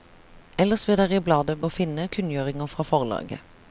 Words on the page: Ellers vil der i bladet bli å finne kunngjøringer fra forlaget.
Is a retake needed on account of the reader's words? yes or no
yes